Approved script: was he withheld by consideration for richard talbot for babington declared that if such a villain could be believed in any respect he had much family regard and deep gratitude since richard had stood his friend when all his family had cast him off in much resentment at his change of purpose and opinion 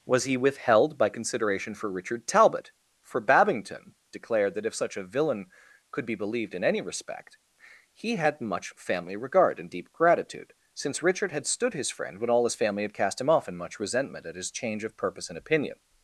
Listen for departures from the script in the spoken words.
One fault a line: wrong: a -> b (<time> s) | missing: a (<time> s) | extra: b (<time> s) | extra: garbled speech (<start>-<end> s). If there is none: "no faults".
no faults